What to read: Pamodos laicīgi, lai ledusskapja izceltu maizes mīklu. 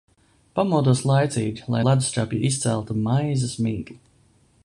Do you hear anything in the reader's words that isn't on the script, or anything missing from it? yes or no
no